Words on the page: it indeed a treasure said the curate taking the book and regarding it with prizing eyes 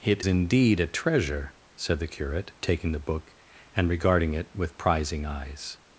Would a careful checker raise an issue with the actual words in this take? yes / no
no